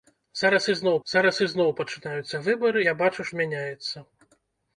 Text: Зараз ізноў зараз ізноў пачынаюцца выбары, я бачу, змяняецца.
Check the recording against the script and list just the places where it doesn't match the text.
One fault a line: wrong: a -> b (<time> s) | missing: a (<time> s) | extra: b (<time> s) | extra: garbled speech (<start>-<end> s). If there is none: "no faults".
no faults